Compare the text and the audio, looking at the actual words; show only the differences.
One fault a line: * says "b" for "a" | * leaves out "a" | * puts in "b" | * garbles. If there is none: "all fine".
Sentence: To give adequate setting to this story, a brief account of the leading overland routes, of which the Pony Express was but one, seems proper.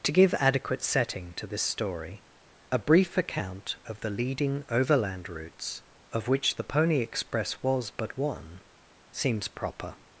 all fine